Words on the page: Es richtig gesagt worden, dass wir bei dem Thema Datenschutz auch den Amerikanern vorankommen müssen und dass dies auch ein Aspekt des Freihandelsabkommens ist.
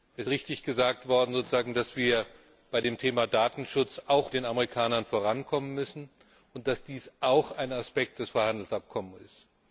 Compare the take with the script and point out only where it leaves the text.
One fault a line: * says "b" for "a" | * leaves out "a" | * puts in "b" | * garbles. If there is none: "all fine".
all fine